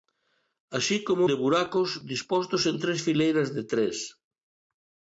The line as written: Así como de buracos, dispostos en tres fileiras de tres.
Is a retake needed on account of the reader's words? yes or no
no